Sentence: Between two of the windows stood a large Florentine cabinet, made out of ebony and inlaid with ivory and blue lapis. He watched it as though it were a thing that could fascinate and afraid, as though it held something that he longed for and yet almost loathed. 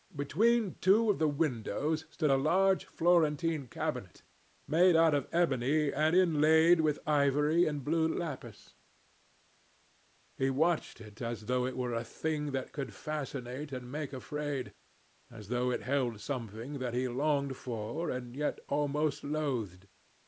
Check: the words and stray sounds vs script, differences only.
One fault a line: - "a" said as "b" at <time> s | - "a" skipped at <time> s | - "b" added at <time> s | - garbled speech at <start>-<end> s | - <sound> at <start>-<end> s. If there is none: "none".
- "make" added at 13.9 s